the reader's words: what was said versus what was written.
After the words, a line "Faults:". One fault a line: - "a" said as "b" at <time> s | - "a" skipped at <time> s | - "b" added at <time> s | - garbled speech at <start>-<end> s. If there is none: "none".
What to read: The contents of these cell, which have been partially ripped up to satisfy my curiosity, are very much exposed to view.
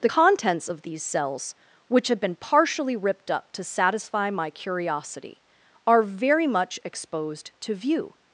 The contents of these cells, which have been partially ripped up to satisfy my curiosity, are very much exposed to view.
Faults:
- "cell" said as "cells" at 1.0 s